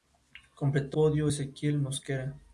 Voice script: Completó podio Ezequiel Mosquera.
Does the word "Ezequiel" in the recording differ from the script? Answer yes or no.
no